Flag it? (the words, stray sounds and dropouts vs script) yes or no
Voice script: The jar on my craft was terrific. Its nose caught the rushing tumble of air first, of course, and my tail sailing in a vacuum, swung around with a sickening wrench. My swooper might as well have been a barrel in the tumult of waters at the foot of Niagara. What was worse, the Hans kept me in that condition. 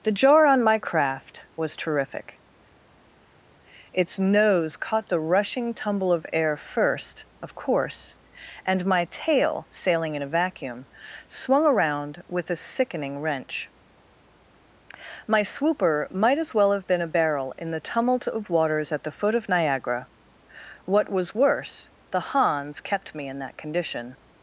no